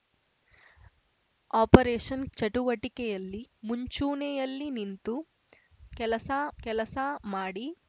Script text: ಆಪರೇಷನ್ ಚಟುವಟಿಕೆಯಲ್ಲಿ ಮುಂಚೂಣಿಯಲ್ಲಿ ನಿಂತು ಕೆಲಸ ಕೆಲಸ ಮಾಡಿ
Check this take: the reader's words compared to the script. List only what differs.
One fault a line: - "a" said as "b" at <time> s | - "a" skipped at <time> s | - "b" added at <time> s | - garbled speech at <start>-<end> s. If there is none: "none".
none